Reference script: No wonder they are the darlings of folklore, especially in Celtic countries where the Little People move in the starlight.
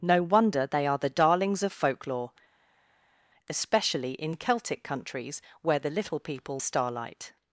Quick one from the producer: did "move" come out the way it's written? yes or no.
no